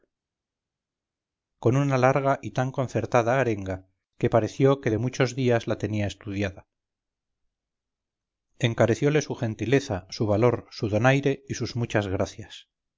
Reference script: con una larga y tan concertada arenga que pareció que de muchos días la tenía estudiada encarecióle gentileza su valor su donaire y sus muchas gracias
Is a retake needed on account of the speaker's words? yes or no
yes